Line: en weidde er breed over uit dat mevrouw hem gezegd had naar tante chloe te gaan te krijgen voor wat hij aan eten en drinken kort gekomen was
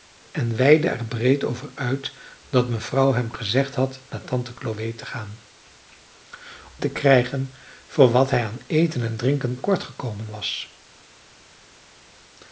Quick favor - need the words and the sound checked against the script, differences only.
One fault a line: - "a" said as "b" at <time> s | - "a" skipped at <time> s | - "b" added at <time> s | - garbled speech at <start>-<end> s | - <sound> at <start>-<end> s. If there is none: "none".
none